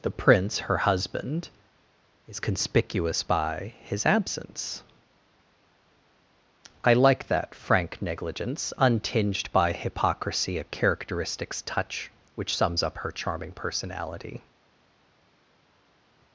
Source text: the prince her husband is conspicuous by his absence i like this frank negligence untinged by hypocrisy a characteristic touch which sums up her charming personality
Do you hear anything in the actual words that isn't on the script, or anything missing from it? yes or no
yes